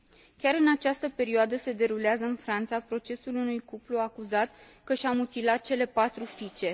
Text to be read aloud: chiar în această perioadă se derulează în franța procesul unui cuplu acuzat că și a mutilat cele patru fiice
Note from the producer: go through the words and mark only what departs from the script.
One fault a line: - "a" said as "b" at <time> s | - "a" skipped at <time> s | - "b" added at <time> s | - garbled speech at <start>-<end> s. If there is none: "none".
none